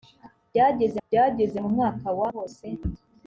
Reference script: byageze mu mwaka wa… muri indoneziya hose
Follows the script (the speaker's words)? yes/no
no